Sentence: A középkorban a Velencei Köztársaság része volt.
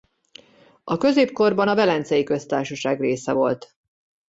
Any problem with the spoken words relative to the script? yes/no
no